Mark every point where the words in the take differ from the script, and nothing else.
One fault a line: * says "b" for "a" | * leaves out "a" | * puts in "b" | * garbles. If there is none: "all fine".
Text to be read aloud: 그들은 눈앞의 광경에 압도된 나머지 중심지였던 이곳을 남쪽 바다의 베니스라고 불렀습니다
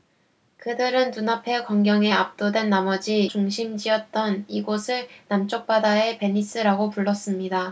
all fine